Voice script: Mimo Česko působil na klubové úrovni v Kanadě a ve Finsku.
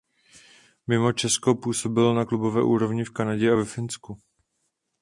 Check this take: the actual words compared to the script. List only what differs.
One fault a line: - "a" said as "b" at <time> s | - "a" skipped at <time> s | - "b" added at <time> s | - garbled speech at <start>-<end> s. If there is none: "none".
none